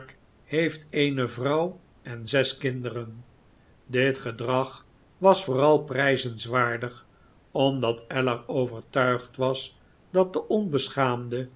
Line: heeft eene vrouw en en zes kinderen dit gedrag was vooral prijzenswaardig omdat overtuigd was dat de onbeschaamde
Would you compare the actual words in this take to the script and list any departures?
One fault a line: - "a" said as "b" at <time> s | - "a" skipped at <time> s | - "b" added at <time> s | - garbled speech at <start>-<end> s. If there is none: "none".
- "en" skipped at 2.2 s
- "ellar" added at 8.1 s